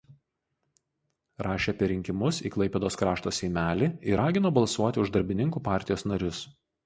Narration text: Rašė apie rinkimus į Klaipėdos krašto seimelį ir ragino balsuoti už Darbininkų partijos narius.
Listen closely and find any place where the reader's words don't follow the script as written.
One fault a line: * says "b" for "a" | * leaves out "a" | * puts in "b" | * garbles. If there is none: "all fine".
all fine